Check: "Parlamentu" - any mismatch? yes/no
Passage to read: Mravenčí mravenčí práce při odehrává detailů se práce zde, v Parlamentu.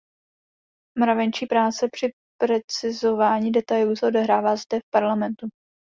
no